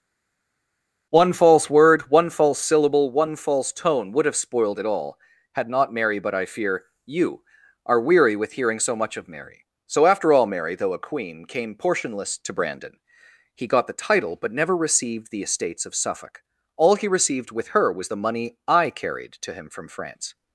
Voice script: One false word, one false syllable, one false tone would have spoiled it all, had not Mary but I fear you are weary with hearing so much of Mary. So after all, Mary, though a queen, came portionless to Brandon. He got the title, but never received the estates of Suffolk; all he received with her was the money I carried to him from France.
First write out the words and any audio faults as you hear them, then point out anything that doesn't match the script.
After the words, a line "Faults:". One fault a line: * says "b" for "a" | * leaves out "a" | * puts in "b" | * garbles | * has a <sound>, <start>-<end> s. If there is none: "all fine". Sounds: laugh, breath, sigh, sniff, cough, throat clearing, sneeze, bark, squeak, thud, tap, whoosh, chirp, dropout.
One false word, one false syllable, one false tone would have spoiled it all, had not Mary but I fear you are weary with hearing so much of Mary. So after all, Mary, though a queen, came portionless to Brandon. He got the title, but never received the estates of Suffolk; all he received with her was the money I carried to him from France.
Faults:
all fine